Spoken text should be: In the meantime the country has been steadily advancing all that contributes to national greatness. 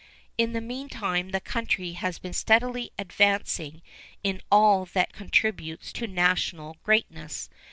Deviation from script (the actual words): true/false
true